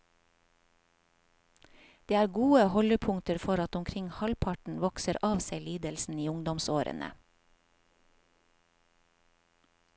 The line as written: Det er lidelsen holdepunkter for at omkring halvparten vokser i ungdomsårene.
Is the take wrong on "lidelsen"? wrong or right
wrong